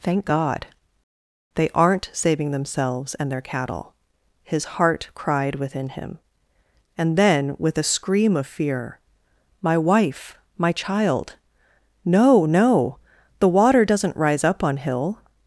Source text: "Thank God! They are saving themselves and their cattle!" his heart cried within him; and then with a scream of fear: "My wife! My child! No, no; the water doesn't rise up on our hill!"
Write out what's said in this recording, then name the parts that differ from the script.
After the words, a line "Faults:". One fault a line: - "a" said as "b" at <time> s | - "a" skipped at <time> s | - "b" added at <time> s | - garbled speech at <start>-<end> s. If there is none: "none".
"Thank God! They aren't saving themselves and their cattle!" his heart cried within him; and then with a scream of fear: "My wife! My child! No, no; the water doesn't rise up on hill!"
Faults:
- "are" said as "aren't" at 1.8 s
- "our" skipped at 14.8 s